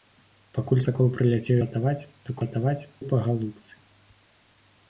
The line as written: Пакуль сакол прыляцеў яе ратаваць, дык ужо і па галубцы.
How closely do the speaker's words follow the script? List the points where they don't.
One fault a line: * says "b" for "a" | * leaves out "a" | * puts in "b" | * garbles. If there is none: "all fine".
* leaves out "яе"
* says "ратаваць" for "ужо"